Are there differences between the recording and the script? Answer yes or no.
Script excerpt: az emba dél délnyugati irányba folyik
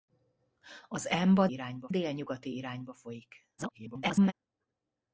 yes